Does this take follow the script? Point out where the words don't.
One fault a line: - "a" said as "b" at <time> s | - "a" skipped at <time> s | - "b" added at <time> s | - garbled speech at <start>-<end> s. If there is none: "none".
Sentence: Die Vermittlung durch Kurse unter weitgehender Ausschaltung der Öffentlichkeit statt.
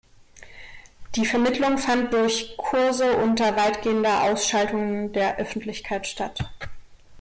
- "fand" added at 1.8 s